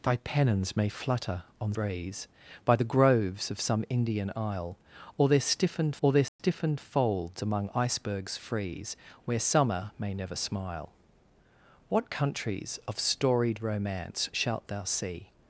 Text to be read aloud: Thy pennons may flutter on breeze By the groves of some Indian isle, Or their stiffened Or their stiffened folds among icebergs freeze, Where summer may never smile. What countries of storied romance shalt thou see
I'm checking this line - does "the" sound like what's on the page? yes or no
yes